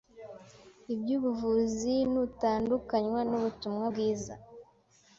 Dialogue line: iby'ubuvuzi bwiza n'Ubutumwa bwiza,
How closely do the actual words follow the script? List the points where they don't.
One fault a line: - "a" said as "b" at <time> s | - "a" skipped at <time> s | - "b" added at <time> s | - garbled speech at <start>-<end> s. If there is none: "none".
- "bwiza" said as "nutandukanywa" at 2.1 s